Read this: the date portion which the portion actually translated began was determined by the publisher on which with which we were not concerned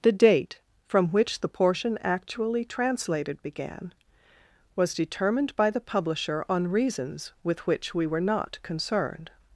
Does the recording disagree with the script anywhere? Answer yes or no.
yes